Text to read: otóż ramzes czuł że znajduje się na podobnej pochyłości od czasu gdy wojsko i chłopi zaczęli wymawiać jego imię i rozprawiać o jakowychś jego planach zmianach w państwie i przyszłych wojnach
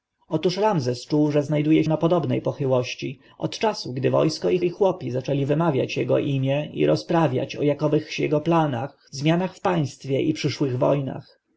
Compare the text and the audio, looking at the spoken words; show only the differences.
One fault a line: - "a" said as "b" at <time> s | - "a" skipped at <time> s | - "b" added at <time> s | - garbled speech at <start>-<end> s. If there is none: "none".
- "się" skipped at 1.8 s
- "i" added at 4.6 s